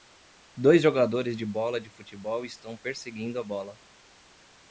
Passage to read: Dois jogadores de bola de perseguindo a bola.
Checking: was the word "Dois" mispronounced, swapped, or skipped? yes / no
no